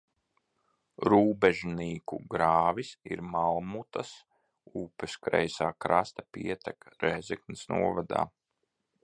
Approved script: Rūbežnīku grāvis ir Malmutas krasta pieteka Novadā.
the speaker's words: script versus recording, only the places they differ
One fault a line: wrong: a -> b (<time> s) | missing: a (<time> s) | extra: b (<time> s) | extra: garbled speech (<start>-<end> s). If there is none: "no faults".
extra: upes kreisā (4.8 s)
extra: Rēzeknes (7.1 s)